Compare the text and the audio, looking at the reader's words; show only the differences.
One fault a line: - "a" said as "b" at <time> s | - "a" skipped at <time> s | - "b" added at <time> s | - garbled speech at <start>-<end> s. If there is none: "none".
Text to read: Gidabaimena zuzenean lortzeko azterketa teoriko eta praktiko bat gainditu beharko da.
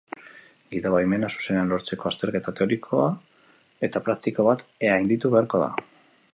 none